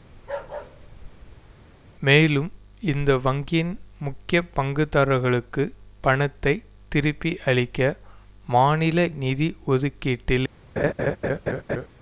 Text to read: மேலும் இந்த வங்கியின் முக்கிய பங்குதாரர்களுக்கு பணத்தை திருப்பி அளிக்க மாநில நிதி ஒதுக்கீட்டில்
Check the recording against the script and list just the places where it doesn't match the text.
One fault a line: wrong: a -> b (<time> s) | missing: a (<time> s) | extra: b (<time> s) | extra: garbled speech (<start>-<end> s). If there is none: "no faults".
no faults